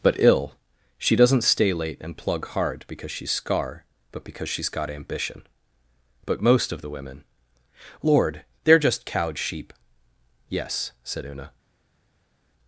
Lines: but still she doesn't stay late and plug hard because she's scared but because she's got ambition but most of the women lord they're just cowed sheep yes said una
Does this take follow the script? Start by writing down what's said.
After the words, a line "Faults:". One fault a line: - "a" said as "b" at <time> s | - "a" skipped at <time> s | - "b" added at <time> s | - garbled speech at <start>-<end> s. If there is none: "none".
but ill she doesn't stay late and plug hard because she's scar but because she's got ambition but most of the women lord they're just cowed sheep yes said una
Faults:
- "still" said as "ill" at 0.2 s
- "scared" said as "scar" at 3.3 s